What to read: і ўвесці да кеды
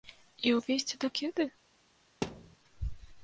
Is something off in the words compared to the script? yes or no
no